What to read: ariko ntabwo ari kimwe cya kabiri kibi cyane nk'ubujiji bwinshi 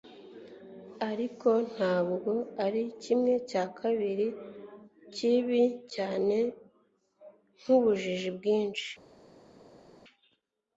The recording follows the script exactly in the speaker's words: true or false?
true